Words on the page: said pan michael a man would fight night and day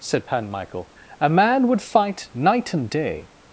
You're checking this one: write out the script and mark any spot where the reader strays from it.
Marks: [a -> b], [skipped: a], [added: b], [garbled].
said pan michael a man would fight night and day